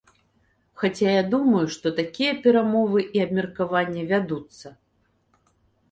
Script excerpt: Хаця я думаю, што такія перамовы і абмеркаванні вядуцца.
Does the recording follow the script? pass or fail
pass